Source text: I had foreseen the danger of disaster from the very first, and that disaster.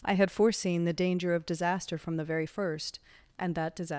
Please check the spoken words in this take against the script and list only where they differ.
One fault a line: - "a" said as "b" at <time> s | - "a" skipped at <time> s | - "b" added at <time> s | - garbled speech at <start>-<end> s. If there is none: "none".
none